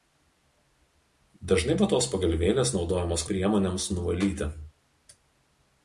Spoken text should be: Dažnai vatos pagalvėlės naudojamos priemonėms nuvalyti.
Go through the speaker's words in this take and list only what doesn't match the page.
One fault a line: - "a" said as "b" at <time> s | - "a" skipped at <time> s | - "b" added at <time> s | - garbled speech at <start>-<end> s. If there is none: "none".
none